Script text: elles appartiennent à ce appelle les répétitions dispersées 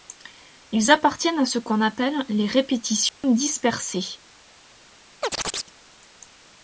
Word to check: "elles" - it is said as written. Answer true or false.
false